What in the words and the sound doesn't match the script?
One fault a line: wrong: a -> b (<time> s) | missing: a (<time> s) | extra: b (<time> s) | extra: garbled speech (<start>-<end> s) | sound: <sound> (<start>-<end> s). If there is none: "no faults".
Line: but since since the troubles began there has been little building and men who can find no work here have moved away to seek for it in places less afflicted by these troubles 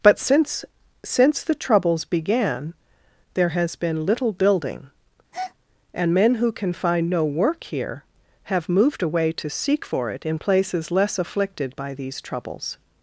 sound: breath (5.3-5.5 s)